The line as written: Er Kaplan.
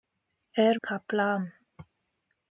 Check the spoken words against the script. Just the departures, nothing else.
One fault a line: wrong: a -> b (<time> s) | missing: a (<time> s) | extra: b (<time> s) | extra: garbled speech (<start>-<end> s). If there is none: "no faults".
no faults